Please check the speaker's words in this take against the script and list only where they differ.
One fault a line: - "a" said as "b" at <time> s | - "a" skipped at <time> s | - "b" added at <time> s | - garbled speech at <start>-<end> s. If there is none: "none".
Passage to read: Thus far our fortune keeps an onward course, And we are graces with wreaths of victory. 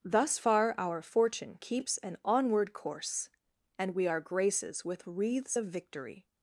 none